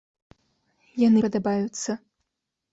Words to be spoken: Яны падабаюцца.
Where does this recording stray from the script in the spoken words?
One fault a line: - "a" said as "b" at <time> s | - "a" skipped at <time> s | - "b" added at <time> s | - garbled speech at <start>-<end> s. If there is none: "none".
none